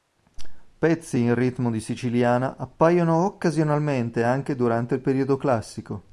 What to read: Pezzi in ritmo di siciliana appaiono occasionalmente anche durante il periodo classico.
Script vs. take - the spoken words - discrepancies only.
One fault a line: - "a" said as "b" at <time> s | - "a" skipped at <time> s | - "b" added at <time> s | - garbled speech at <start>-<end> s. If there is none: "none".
none